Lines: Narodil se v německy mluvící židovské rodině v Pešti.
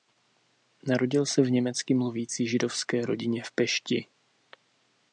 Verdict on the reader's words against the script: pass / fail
pass